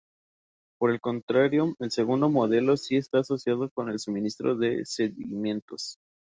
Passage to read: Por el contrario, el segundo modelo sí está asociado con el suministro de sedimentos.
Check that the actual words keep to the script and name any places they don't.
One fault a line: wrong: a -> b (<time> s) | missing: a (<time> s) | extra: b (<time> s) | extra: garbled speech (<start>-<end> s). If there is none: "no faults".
no faults